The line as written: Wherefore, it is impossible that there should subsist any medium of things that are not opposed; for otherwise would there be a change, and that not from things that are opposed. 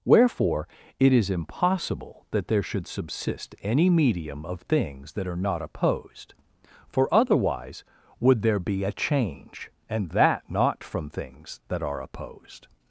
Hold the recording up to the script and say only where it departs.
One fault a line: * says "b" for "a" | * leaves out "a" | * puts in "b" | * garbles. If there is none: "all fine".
all fine